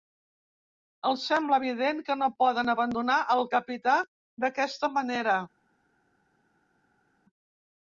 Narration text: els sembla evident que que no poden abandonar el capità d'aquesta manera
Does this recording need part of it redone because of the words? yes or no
yes